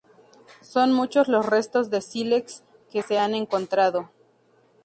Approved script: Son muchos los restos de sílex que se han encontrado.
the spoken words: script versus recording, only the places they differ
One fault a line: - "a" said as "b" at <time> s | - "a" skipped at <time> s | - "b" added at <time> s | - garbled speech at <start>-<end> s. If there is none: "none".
none